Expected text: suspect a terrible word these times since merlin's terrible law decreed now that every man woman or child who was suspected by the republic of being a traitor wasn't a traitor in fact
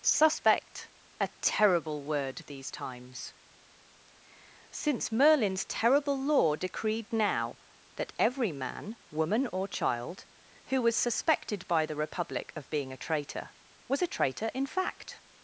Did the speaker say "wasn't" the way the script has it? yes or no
no